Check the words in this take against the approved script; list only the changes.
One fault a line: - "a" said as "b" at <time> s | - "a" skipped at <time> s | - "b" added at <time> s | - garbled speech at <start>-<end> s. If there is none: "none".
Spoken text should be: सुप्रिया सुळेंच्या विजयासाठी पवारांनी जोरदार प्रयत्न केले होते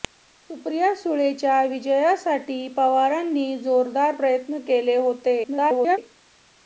- garbled speech at 5.4-6.0 s